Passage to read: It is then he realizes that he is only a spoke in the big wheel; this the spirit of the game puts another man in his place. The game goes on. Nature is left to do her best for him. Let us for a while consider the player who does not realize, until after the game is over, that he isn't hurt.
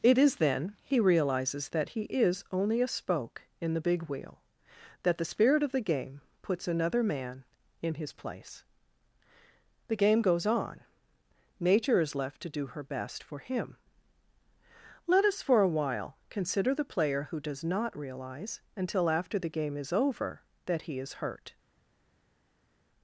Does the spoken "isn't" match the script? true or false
false